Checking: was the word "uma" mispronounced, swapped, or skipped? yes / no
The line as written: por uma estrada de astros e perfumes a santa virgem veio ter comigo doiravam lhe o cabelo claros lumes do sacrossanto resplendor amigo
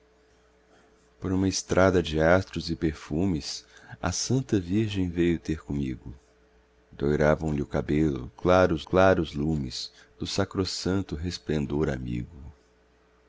no